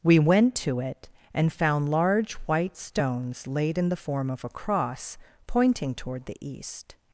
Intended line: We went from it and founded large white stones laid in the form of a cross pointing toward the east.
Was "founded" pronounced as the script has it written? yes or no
no